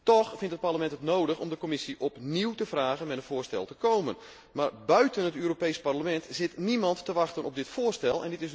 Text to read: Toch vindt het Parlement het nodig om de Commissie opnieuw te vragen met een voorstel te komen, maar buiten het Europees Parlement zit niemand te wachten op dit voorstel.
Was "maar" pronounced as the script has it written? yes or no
yes